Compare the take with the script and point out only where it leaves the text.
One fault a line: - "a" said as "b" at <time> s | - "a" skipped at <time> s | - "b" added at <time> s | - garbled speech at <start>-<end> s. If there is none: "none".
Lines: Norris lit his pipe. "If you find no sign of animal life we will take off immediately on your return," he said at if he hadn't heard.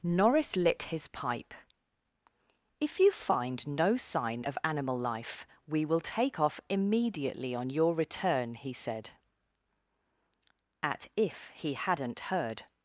none